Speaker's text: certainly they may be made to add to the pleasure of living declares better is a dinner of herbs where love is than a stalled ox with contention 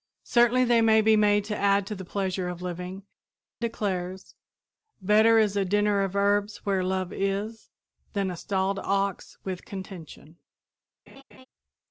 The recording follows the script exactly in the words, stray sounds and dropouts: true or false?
false